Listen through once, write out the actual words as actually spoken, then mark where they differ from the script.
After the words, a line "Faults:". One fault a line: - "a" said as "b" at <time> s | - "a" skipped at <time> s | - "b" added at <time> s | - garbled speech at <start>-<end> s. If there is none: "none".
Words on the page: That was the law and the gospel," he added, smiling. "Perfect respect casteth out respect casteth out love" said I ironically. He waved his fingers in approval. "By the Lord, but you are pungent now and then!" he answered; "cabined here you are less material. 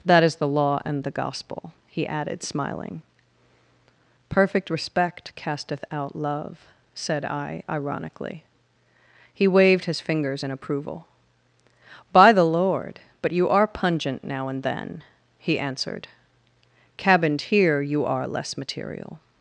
That is the law and the gospel," he added, smiling. "Perfect respect casteth out love" said I ironically. He waved his fingers in approval. "By the Lord, but you are pungent now and then!" he answered; "cabined here you are less material.
Faults:
- "was" said as "is" at 0.2 s
- "respect casteth out" skipped at 6.2 s